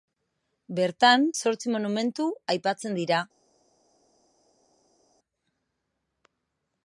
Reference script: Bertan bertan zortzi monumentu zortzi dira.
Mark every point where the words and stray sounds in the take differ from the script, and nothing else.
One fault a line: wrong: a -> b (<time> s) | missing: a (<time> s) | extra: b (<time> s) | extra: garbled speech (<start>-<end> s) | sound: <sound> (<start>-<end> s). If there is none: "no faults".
missing: bertan (1.3 s)
wrong: zortzi -> aipatzen (2.6 s)